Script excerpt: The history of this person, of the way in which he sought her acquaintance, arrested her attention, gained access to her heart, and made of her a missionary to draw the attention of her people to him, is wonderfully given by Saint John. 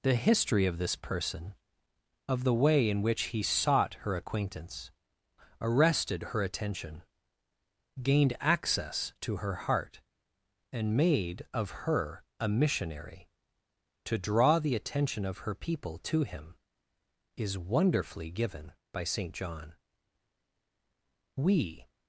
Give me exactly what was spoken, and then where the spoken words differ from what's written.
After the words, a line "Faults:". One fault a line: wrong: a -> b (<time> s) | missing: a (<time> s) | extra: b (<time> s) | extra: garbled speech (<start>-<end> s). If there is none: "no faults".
The history of this person, of the way in which he sought her acquaintance, arrested her attention, gained access to her heart, and made of her a missionary to draw the attention of her people to him, is wonderfully given by Saint John. We
Faults:
extra: We (21.4 s)